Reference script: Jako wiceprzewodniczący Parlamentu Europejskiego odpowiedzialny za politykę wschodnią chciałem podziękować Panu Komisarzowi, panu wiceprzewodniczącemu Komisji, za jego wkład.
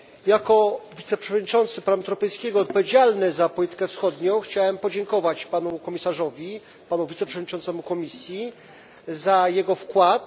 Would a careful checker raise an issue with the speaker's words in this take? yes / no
no